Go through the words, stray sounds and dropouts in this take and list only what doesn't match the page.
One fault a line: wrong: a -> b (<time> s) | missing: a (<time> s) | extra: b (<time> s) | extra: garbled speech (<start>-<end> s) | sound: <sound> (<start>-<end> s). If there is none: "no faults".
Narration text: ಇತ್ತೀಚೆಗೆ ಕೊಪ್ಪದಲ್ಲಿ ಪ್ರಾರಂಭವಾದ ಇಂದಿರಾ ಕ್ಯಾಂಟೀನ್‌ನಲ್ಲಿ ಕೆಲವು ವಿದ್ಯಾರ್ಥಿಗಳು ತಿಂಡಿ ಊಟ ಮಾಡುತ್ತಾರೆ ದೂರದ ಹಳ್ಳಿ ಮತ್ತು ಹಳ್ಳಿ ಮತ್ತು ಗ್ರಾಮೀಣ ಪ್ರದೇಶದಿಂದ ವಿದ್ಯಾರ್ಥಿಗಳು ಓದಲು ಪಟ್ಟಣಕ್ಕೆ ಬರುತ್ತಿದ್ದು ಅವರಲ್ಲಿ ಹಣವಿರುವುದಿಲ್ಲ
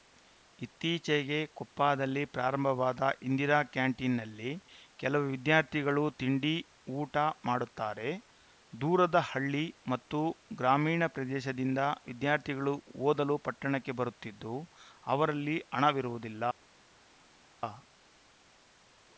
missing: ಹಳ್ಳಿ ಮತ್ತು (10.2 s)